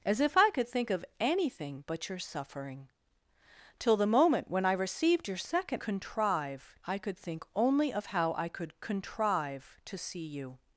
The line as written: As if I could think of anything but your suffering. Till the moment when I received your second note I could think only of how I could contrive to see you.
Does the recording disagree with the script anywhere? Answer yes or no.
yes